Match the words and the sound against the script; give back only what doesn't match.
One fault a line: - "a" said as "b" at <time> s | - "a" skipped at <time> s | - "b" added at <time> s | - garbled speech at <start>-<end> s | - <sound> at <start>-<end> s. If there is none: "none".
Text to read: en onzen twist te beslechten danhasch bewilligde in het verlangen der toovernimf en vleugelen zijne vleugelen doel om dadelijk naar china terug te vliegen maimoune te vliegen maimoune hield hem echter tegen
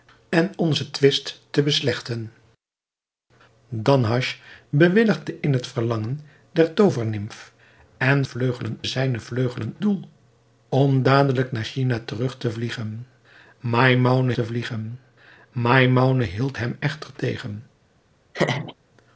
- laugh at 18.3-18.7 s